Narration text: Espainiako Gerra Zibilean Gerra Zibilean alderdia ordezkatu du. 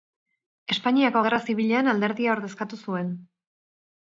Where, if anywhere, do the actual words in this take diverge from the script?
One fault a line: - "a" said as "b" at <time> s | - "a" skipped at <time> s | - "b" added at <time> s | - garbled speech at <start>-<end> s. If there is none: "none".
- "Gerra Zibilean" skipped at 1.9 s
- "du" said as "zuen" at 2.8 s